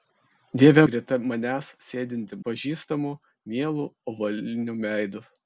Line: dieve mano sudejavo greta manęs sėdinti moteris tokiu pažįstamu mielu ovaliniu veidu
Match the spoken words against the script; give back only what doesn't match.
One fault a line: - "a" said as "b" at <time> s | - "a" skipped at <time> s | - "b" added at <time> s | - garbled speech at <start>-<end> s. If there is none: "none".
- "mano sudejavo" skipped at 0.8 s
- "moteris tokiu" skipped at 2.4 s